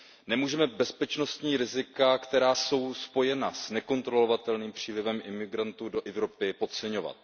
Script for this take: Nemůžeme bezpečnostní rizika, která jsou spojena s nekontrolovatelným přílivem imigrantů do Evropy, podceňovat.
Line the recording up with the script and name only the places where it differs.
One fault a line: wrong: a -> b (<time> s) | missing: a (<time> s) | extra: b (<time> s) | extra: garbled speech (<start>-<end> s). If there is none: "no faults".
no faults